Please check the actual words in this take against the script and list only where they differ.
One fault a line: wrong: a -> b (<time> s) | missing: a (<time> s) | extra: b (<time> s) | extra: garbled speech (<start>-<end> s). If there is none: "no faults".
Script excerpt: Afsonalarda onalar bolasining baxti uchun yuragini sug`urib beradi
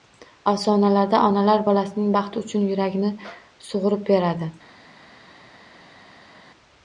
no faults